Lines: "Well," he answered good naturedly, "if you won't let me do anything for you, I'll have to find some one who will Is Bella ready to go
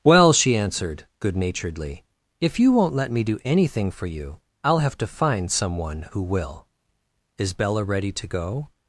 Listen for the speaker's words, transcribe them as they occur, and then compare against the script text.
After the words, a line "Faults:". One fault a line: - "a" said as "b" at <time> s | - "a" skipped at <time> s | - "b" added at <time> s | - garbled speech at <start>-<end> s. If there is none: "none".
"Well," she answered good naturedly, "if you won't let me do anything for you, I'll have to find some one who will Is Bella ready to go
Faults:
- "he" said as "she" at 0.3 s